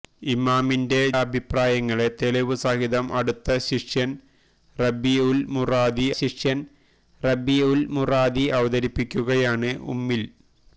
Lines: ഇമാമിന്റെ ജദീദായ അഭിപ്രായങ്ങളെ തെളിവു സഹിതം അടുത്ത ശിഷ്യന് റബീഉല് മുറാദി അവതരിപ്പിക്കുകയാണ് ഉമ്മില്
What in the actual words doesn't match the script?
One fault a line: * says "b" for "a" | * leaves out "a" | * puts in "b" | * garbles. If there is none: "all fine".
* leaves out "ജദീദായ"
* puts in "ശിഷ്യന് റബീഉല് മുറാദി"